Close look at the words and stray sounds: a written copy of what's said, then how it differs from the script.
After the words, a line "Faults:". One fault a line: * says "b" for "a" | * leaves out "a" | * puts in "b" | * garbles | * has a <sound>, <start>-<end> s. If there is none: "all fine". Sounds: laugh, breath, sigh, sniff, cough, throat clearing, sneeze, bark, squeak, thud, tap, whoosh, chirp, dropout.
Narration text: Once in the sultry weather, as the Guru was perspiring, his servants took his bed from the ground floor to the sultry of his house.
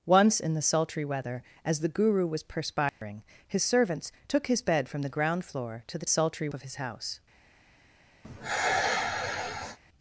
Once in the sultry weather, as the Guru was perspiring, his servants took his bed from the ground floor to the sultry of his house.
Faults:
* has a dropout, 2.9-3.0 s
* has a sigh, 8.2-9.8 s